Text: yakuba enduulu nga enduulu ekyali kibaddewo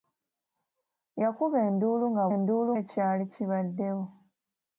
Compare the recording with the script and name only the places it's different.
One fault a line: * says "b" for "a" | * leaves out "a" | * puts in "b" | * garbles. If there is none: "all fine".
all fine